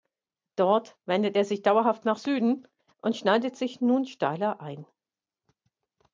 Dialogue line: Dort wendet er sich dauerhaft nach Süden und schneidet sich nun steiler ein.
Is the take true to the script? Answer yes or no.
yes